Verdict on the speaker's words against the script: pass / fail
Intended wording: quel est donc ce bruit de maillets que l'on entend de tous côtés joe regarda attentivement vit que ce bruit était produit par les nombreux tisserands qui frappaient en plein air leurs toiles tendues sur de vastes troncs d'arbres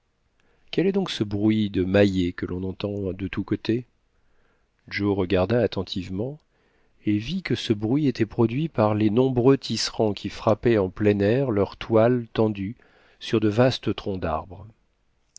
fail